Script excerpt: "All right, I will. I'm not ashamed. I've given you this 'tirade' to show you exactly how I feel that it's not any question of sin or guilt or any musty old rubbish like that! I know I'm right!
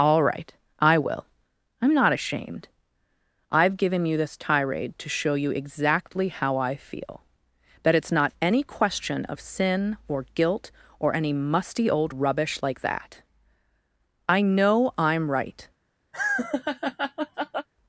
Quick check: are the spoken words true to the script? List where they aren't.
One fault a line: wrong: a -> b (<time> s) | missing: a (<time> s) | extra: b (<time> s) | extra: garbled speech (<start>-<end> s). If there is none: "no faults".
no faults